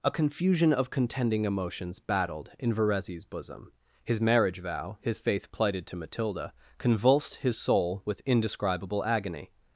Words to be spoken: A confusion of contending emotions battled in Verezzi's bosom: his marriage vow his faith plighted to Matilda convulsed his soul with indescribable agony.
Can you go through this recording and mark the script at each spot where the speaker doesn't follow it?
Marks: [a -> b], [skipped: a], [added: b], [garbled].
A confusion of contending emotions battled in Verezzi's bosom: his marriage vow his faith plighted to Matilda convulsed his soul with indescribable agony.